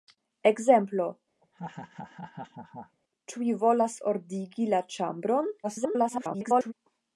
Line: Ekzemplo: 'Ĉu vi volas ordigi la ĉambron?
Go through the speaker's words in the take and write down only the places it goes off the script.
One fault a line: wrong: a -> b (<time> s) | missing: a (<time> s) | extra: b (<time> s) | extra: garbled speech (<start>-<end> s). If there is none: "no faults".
extra: garbled speech (5.6-6.7 s)